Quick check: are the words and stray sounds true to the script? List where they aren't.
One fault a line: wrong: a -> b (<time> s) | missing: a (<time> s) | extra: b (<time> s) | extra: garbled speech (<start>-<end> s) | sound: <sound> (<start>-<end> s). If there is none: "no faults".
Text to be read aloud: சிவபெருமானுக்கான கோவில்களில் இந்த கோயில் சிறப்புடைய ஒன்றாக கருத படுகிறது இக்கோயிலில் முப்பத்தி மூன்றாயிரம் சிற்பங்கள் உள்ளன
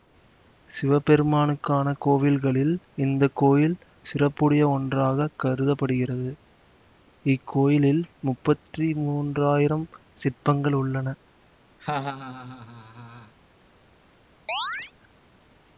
sound: laugh (11.8-13.3 s)
sound: chirp (14.5-14.9 s)